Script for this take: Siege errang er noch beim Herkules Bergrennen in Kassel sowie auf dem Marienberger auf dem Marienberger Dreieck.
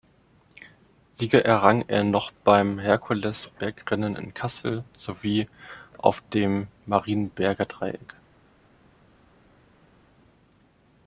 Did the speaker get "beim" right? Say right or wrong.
right